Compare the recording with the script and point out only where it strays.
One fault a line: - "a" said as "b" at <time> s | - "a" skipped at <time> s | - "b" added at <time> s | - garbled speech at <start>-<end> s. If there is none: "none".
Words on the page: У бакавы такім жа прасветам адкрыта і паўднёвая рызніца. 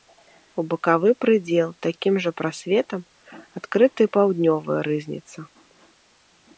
- "прыдзел" added at 1.2 s